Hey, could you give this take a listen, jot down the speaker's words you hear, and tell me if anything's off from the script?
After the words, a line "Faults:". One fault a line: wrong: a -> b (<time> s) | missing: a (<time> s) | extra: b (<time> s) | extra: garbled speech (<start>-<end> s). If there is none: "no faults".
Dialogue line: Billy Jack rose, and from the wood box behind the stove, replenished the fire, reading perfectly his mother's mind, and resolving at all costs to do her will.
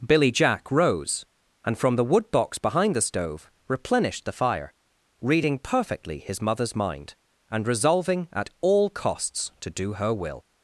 Billy Jack rose, and from the wood box behind the stove, replenished the fire, reading perfectly his mother's mind, and resolving at all costs to do her will.
Faults:
no faults